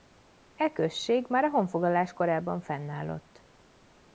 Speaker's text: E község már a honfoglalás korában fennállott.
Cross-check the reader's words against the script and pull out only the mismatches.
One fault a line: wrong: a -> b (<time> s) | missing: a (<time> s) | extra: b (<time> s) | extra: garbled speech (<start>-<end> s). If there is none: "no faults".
no faults